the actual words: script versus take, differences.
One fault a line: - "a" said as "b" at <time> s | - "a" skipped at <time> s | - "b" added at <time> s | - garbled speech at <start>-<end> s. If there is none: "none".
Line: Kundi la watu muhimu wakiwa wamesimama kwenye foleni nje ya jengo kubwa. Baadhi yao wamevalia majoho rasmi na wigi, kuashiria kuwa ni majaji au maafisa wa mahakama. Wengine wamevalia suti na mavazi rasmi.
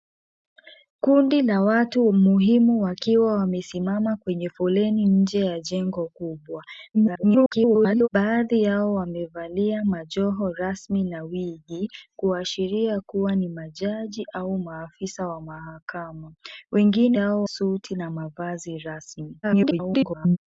- garbled speech at 6.9-8.1 s
- "wamevalia" said as "yao" at 17.1 s
- garbled speech at 19.4-20.4 s